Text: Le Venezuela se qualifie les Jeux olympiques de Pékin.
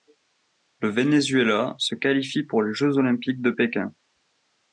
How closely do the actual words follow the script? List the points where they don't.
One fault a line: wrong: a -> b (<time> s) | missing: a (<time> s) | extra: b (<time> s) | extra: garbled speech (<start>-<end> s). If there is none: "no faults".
extra: pour (2.4 s)